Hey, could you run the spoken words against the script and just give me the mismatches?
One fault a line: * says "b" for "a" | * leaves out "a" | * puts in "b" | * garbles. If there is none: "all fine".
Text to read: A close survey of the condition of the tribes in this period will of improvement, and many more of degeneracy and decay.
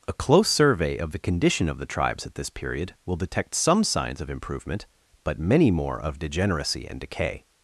* says "at" for "in"
* puts in "detect some signs"
* says "but" for "and"